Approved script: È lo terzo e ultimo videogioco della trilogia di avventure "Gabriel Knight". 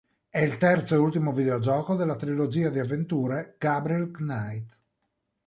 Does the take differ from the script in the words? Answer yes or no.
yes